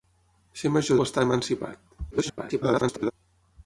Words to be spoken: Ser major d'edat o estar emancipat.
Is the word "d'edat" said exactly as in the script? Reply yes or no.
no